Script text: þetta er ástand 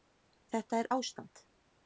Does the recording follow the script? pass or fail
pass